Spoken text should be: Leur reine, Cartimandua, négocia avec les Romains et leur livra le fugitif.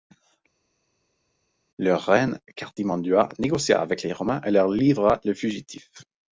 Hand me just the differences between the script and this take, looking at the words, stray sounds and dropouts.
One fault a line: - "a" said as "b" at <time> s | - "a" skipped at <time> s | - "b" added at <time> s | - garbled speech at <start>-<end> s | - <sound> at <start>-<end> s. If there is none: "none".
none